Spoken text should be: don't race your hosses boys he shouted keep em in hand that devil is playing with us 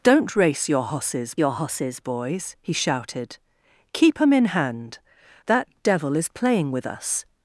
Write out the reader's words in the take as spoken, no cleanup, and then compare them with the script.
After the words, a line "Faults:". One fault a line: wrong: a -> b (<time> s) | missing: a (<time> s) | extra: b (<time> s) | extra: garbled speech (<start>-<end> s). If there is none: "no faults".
don't race your hosses your hosses boys he shouted keep em in hand that devil is playing with us
Faults:
extra: your hosses (1.4 s)